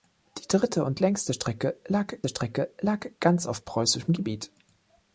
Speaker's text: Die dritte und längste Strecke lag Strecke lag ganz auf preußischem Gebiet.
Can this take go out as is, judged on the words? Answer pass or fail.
pass